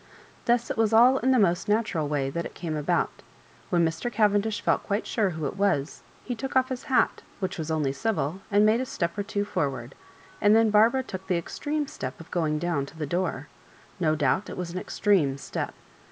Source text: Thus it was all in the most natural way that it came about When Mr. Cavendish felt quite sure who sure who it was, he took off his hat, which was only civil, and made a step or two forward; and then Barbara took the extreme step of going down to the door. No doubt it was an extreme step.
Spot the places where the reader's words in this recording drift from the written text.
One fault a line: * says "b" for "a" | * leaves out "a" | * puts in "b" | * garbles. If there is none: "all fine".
* leaves out "sure who"